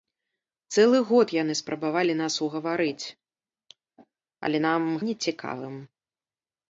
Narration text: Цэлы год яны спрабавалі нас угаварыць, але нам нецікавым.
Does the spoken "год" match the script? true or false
true